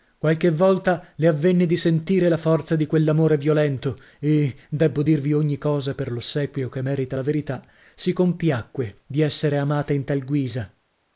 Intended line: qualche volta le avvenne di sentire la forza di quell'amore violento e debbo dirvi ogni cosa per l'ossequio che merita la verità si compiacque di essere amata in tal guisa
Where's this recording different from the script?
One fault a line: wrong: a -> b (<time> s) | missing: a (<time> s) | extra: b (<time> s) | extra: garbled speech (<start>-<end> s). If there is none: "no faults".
no faults